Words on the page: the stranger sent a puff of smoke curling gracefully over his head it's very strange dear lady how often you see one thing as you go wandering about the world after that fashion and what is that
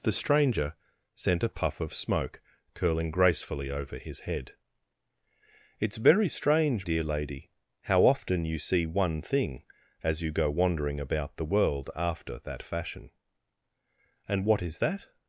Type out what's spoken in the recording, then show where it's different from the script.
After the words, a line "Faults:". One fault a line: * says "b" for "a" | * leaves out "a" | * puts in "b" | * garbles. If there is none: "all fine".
the stranger sent a puff of smoke curling gracefully over his head it's very strange dear lady how often you see one thing as you go wandering about the world after that fashion and what is that
Faults:
all fine